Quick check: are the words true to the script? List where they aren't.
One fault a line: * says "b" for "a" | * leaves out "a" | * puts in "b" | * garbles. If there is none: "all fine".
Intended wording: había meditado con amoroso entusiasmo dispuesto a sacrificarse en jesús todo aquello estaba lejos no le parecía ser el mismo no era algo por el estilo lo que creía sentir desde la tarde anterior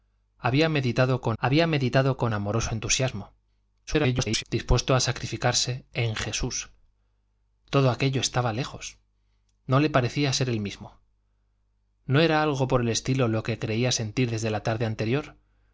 * puts in "había meditado con"
* garbles